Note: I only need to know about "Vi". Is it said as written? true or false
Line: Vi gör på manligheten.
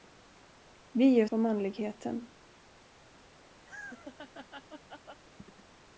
true